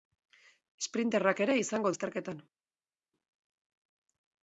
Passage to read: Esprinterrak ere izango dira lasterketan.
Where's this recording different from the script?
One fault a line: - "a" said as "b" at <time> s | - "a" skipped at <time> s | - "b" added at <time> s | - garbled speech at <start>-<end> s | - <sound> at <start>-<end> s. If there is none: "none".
- "dira" skipped at 1.9 s